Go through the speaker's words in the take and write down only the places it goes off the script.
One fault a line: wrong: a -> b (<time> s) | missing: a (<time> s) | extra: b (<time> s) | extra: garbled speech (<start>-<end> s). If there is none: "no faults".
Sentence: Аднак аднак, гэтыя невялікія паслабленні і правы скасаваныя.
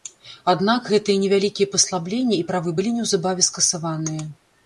missing: аднак (0.9 s)
extra: былі неўзабаве (2.8 s)